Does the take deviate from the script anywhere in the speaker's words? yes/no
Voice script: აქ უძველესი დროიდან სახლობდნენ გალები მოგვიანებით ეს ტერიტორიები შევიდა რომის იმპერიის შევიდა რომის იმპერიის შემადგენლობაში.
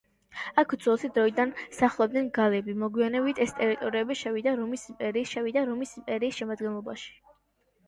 no